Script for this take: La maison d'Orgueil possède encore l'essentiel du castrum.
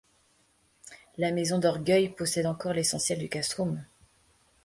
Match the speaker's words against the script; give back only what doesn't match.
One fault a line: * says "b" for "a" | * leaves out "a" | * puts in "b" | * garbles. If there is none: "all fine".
all fine